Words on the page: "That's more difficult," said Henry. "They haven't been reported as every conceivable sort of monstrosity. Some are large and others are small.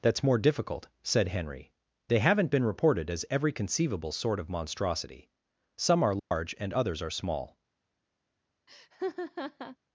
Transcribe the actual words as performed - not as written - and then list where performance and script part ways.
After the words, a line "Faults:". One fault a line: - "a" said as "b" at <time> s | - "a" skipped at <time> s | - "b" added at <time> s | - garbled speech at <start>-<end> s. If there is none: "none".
"That's more difficult," said Henry. "They haven't been reported as every conceivable sort of monstrosity. Some are large and others are small.
Faults:
none